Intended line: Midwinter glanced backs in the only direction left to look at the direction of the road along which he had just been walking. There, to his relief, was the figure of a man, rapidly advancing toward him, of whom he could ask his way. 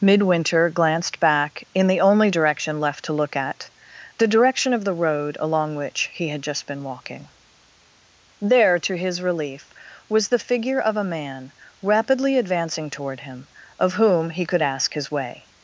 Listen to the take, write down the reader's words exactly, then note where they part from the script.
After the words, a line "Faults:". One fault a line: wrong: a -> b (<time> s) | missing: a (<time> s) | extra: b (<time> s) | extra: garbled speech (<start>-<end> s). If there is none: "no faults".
Midwinter glanced back in the only direction left to look at the direction of the road along which he had just been walking. There, to his relief, was the figure of a man, rapidly advancing toward him, of whom he could ask his way.
Faults:
wrong: backs -> back (1.2 s)